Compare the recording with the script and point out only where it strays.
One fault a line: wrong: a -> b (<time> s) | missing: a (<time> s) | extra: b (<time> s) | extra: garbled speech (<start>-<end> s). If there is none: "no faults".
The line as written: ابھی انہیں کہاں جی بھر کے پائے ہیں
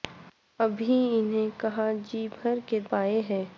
no faults